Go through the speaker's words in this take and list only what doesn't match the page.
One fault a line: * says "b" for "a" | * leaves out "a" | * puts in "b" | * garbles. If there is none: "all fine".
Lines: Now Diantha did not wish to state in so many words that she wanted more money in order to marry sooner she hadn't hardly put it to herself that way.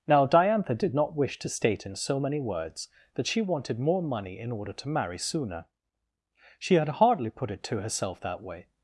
* says "had" for "hadn't"